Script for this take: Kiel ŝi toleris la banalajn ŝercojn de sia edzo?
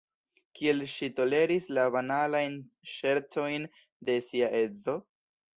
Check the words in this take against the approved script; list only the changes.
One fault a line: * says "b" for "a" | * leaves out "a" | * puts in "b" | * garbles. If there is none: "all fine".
all fine